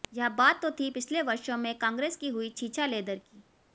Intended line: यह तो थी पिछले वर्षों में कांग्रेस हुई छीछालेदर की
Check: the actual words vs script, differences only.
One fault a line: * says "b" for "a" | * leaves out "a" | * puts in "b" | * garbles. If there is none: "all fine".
* puts in "बात"
* puts in "की"